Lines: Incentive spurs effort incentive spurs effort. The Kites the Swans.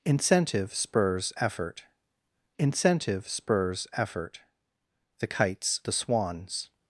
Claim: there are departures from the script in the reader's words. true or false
false